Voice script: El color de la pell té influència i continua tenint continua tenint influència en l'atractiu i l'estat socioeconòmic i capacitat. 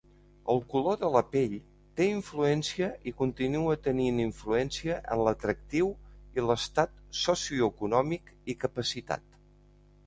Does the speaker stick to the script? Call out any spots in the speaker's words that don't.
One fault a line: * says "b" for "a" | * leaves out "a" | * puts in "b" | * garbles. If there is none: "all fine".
* leaves out "continua tenint"